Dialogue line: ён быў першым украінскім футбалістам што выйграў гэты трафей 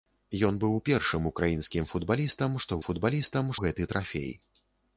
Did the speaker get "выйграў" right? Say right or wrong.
wrong